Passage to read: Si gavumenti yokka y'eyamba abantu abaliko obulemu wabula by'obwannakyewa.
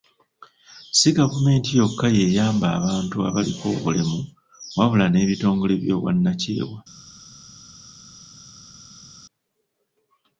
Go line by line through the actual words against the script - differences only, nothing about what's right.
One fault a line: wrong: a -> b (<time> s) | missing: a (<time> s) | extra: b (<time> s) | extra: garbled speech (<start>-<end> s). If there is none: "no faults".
extra: n'ebitongole (5.1 s)